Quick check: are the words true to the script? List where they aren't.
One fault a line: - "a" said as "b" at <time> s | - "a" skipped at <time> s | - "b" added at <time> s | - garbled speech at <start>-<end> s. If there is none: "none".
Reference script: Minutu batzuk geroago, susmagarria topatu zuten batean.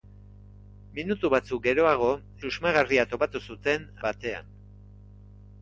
none